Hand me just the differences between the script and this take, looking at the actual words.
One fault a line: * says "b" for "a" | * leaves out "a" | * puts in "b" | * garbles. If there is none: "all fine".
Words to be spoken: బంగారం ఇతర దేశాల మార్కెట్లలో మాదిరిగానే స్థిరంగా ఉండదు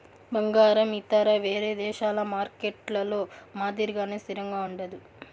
* puts in "వేరే"